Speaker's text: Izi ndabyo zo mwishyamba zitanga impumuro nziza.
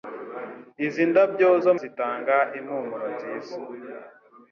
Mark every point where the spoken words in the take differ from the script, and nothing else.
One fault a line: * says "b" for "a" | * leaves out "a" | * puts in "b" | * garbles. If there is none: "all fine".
* leaves out "mwishyamba"